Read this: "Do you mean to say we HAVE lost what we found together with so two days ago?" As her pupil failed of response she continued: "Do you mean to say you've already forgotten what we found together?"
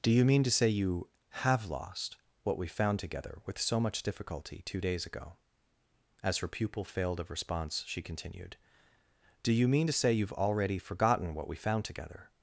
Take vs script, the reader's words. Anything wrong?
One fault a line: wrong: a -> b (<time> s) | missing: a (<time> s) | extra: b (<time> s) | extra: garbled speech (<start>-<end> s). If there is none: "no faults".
wrong: we -> you (0.7 s)
extra: much difficulty (3.8 s)